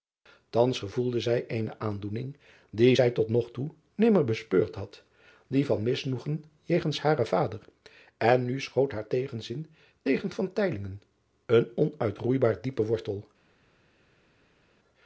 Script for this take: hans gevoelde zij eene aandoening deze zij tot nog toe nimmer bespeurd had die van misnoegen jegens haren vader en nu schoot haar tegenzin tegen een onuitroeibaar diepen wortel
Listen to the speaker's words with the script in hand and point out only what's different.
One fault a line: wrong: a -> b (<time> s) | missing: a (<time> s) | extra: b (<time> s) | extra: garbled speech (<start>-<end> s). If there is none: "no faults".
wrong: deze -> die (2.7 s)